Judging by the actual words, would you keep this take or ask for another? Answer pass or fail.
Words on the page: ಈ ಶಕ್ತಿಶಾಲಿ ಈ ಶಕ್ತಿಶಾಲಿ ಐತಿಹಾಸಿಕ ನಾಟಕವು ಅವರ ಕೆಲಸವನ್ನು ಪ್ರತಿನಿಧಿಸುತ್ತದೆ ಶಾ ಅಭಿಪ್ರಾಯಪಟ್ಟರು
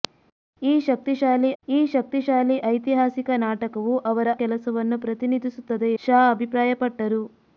pass